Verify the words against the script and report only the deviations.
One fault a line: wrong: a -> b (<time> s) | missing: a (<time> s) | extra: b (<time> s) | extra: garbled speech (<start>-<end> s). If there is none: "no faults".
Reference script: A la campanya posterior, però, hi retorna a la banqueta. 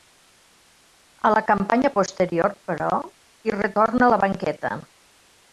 no faults